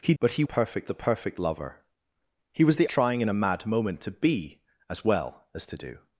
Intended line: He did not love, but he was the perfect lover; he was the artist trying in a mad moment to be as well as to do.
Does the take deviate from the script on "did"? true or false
true